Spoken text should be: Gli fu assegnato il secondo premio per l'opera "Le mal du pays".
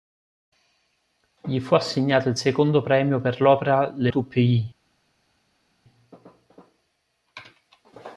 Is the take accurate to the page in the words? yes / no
no